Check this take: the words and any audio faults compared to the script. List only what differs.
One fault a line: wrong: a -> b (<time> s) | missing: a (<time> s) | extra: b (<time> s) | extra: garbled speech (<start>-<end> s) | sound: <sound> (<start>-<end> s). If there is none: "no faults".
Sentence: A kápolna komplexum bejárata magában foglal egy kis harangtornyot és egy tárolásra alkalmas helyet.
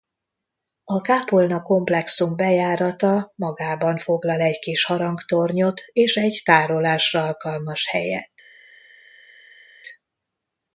no faults